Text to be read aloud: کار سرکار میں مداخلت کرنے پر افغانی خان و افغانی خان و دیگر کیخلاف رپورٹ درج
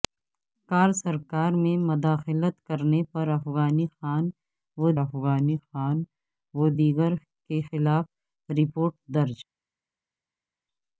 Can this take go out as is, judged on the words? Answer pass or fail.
pass